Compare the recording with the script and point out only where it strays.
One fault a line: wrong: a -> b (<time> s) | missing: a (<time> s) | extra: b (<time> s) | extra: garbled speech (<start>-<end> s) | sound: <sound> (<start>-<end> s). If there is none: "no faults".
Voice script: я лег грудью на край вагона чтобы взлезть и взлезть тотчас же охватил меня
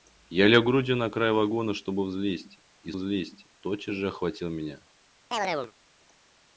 sound: chirp (5.3-5.7 s)